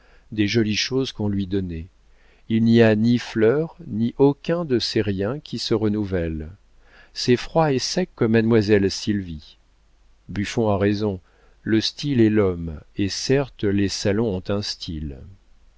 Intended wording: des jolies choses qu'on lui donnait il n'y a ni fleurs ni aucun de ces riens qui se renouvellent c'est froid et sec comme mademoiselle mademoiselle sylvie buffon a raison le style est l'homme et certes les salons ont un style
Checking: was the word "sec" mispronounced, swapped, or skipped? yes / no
no